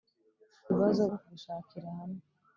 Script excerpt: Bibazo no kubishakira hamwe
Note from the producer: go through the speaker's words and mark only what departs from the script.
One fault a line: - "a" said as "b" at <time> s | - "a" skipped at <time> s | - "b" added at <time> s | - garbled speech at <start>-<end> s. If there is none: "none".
none